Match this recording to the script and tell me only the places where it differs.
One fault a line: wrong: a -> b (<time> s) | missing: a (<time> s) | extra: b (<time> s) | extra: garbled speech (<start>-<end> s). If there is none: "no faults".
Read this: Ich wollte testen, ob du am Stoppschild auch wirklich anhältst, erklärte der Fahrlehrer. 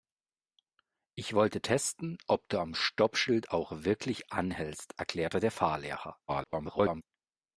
extra: garbled speech (6.3-7.0 s)